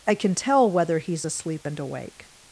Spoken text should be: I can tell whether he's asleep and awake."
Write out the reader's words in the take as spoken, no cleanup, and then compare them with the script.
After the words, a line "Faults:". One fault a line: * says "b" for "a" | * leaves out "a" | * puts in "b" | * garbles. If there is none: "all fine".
I can tell whether he's asleep and awake."
Faults:
all fine